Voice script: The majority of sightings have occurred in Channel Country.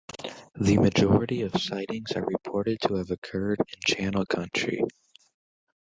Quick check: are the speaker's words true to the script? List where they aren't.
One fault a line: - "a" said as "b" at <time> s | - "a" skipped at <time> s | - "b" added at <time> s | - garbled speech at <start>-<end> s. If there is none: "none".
- "are reported to" added at 2.1 s